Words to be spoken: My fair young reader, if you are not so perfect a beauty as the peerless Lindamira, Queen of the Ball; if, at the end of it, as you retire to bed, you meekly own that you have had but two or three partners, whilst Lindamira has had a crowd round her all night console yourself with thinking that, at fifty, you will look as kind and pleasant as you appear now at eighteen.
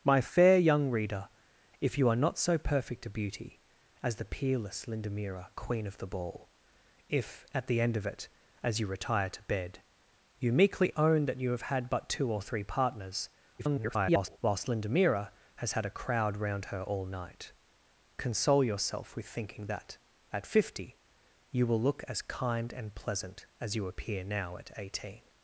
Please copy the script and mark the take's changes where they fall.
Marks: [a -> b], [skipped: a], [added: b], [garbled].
My fair young reader, if you are not so perfect a beauty as the peerless Lindamira, Queen of the Ball; if, at the end of it, as you retire to bed, you meekly own that you have had but two or three partners, [garbled] whilst Lindamira has had a crowd round her all night console yourself with thinking that, at fifty, you will look as kind and pleasant as you appear now at eighteen.